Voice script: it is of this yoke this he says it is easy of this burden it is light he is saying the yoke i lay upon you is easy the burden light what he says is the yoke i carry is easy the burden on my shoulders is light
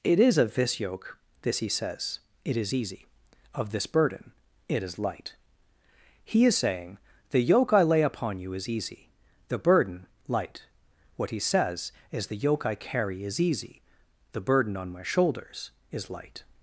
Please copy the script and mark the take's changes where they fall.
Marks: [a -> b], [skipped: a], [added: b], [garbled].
it is of this yoke this he says it is easy of this burden it is light he is saying the yoke i lay upon you is easy the burden light what he says is the yoke i carry is easy the burden on my shoulders is light